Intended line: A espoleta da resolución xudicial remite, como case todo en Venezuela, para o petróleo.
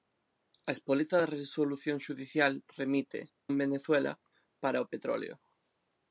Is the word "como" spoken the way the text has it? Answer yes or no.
no